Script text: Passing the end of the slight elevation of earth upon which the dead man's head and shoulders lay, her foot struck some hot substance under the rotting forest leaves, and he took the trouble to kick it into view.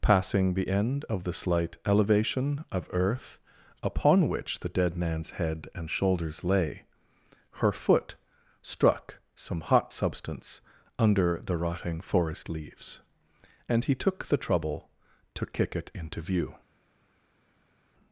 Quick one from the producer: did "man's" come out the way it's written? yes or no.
yes